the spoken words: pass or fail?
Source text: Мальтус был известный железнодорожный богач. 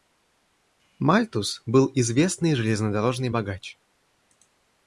pass